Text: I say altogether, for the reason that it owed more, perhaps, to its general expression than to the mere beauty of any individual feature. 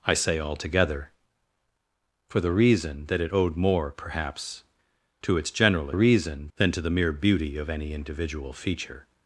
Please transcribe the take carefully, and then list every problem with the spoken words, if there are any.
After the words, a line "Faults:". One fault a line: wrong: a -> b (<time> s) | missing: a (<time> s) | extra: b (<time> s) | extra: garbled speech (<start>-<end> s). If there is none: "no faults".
I say altogether, for the reason that it owed more, perhaps, to its general reason than to the mere beauty of any individual feature.
Faults:
wrong: expression -> reason (5.9 s)